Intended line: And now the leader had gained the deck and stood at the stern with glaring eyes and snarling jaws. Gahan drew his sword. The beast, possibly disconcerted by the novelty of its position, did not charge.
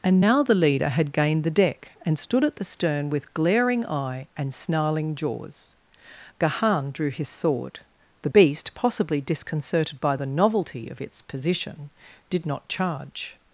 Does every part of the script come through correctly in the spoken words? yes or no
no